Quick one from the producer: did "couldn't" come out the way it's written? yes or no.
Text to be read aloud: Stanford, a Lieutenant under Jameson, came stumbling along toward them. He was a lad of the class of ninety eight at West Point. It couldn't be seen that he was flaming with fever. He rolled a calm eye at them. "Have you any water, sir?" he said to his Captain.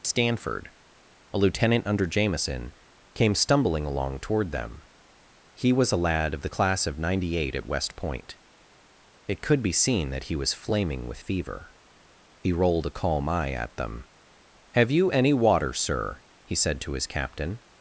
no